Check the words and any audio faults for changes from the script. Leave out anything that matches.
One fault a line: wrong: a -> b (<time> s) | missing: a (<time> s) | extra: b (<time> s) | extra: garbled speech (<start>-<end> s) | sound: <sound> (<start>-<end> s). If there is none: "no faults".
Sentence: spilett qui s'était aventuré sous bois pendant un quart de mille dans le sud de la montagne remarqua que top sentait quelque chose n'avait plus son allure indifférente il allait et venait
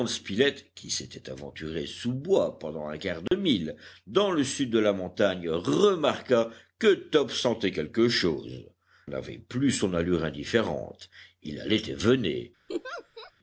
sound: dropout (3.3-3.3 s)
sound: laugh (12.7-13.3 s)